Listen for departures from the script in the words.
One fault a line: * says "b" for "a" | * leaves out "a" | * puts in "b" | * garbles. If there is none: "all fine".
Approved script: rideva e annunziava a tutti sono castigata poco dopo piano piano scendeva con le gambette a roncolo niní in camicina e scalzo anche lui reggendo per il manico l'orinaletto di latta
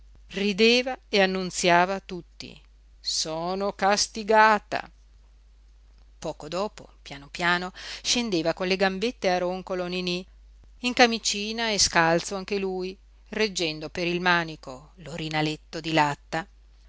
all fine